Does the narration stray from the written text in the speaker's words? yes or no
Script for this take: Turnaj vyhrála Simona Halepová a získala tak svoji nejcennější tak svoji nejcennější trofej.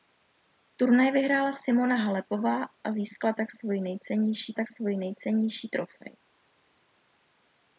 no